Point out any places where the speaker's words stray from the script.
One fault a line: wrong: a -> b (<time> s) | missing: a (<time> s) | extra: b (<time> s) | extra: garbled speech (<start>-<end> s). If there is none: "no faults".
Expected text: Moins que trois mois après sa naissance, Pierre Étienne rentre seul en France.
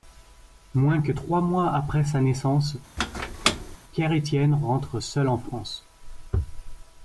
no faults